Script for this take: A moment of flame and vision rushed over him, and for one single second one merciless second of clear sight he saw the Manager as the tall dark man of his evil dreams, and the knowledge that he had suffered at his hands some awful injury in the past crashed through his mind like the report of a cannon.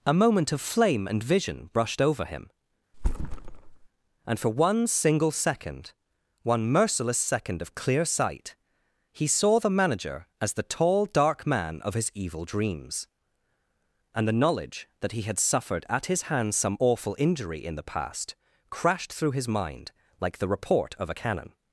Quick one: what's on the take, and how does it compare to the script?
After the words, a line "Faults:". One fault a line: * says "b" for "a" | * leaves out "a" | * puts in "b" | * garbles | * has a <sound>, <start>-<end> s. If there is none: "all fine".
A moment of flame and vision brushed over him, and for one single second one merciless second of clear sight he saw the Manager as the tall dark man of his evil dreams, and the knowledge that he had suffered at his hands some awful injury in the past crashed through his mind like the report of a cannon.
Faults:
* says "brushed" for "rushed"
* has a thud, 2.9-3.9 s